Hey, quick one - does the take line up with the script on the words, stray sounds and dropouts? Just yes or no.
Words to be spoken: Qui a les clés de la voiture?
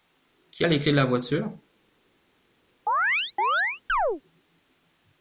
no